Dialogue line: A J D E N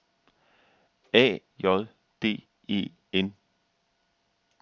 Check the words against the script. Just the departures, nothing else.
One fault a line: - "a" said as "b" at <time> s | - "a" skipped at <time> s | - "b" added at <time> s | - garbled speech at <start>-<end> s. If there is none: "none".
none